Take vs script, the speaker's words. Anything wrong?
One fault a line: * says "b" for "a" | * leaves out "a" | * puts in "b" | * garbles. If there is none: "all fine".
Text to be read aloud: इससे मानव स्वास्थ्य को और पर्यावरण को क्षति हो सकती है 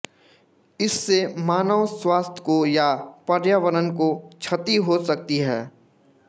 * says "या" for "और"